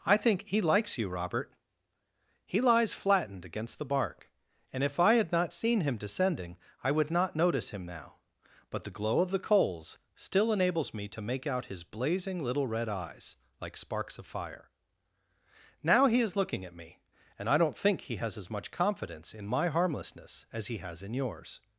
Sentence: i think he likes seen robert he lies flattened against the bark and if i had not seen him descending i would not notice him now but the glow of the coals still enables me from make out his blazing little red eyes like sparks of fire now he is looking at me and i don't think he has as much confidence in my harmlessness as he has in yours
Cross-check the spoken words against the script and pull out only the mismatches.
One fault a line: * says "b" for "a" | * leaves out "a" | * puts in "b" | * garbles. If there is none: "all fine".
* says "you" for "seen"
* says "to" for "from"